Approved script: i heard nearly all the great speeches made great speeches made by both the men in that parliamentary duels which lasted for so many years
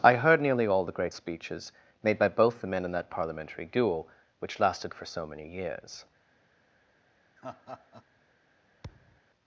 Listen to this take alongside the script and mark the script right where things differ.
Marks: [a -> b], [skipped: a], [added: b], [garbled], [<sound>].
i heard nearly all the great speeches made [skipped: great speeches made] by both the men in that parliamentary [duels -> duel] which lasted for so many years [laugh] [thud]